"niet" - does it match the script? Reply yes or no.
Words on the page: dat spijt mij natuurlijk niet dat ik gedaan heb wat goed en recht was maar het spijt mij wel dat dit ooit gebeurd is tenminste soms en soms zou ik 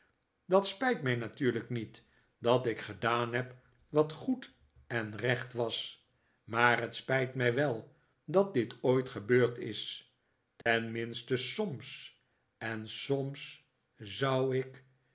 yes